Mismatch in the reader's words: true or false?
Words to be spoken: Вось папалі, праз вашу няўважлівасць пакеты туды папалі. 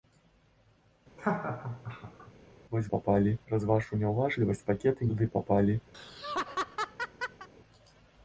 false